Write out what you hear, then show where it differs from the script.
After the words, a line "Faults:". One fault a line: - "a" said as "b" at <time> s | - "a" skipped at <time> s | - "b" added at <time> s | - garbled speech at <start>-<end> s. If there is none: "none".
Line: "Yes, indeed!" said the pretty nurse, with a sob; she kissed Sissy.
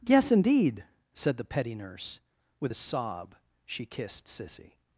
"Yes, indeed!" said the petty nurse, with a sob; she kissed Sissy.
Faults:
- "pretty" said as "petty" at 1.4 s